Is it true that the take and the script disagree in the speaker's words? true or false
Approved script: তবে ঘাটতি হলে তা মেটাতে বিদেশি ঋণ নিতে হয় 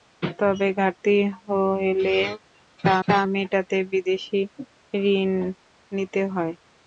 true